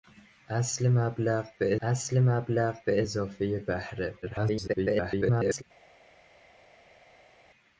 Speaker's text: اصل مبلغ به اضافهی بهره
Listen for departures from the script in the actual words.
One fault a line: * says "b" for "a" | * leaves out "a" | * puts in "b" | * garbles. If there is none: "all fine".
* puts in "اصل مبلغ به"
* garbles